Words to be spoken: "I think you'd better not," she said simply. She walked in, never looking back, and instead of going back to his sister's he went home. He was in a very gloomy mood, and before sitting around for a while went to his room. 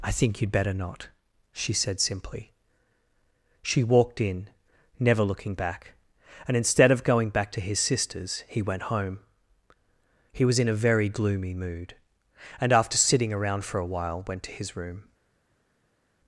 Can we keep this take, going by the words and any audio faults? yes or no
no